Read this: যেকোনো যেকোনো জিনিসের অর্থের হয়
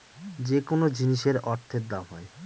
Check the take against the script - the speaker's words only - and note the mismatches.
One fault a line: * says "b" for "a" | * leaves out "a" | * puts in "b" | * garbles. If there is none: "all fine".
* leaves out "যেকোনো"
* puts in "দাম"